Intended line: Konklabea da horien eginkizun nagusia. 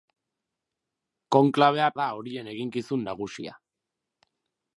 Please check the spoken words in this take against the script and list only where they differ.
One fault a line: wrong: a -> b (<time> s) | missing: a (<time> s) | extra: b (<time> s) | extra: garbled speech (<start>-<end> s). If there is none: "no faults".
no faults